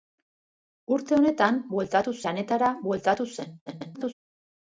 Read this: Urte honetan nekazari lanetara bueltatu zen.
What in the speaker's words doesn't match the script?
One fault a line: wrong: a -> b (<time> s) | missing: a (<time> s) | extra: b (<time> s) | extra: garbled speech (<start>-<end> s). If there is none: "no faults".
wrong: nekazari -> bueltatu (1.7 s)
extra: garbled speech (3.7-4.1 s)